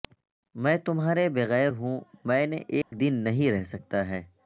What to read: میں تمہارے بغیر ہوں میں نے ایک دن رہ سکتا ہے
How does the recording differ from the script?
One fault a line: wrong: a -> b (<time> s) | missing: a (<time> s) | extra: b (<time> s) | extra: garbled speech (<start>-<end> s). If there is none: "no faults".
extra: نہیں (3.2 s)